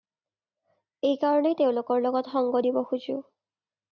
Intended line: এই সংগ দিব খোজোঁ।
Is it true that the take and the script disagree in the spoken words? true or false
true